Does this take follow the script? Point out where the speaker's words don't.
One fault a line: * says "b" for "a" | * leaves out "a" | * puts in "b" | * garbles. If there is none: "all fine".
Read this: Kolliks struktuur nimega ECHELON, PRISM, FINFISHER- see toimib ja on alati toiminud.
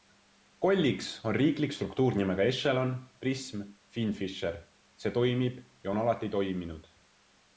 * puts in "on riiklik"